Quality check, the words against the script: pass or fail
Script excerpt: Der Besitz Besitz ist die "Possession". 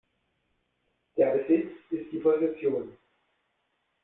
fail